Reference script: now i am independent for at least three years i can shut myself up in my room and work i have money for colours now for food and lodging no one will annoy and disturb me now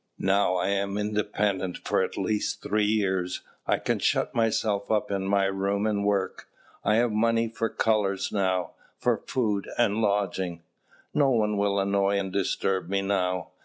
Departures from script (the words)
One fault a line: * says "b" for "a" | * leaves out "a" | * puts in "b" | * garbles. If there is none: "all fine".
all fine